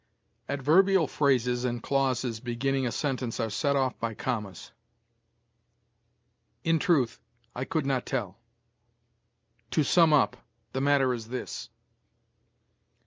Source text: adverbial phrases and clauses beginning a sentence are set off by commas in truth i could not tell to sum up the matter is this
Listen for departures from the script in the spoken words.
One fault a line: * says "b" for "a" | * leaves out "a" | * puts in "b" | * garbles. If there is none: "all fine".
all fine